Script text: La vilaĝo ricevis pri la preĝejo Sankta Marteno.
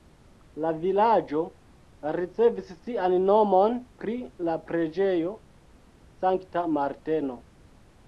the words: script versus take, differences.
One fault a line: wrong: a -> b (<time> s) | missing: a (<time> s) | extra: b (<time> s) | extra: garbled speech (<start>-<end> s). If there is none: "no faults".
extra: sian nomon (2.8 s)